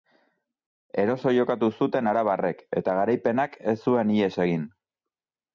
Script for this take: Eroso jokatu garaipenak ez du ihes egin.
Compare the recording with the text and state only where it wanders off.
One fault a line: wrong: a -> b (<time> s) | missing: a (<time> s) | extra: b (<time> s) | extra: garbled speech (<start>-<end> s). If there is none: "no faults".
extra: zuten arabarrek eta (1.8 s)
wrong: du -> zuen (3.9 s)